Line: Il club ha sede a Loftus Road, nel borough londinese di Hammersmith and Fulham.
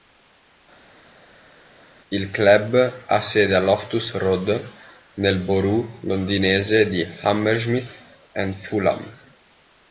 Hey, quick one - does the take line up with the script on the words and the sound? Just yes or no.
yes